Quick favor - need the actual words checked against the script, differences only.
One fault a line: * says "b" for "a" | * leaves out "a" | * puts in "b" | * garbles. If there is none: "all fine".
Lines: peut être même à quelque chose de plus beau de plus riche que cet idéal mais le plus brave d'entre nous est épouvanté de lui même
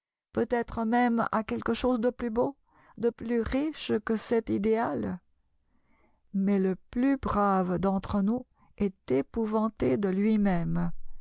all fine